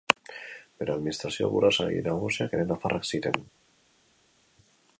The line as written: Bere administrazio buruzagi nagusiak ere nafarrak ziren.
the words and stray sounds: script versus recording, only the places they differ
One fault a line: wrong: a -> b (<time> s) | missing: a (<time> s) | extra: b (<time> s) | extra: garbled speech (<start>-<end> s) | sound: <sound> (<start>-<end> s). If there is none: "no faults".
no faults